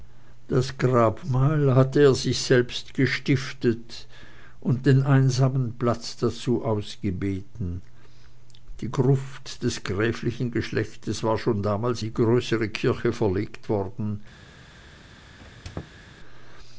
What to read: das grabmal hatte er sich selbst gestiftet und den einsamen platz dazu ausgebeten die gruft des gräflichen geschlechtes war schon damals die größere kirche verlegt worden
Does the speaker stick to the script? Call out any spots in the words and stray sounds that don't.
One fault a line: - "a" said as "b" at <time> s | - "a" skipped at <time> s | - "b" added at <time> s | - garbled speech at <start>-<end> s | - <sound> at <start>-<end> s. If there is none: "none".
- squeak at 15.4-16.0 s